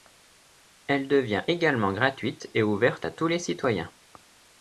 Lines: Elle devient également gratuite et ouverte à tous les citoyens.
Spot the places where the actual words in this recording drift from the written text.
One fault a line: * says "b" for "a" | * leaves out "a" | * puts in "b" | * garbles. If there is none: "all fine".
all fine